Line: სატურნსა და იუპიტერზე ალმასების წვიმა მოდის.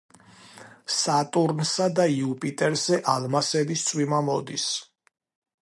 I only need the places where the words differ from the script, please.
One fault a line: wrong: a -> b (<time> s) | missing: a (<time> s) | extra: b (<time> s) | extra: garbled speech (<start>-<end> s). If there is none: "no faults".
no faults